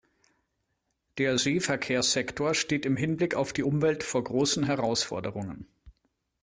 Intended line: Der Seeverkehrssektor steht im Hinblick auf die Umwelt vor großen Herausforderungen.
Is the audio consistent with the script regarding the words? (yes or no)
yes